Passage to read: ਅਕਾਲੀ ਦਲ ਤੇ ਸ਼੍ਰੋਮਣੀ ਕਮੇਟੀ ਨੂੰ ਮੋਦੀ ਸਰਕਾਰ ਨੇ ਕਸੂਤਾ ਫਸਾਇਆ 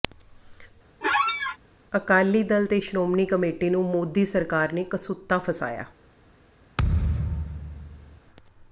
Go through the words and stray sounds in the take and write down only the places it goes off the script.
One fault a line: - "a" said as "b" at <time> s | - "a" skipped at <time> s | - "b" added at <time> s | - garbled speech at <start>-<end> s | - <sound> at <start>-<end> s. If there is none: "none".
- squeak at 1.0-1.6 s
- thud at 6.8-8.2 s